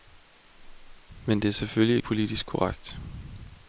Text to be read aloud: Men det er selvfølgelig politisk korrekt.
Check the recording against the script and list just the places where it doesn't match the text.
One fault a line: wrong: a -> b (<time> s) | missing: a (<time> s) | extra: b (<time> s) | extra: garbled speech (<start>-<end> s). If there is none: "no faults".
no faults